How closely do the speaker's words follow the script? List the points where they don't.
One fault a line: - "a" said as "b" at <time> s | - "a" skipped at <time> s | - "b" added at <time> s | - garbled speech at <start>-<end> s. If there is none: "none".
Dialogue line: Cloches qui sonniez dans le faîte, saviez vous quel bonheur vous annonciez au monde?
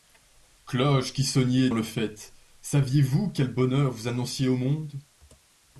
- "dans" skipped at 1.7 s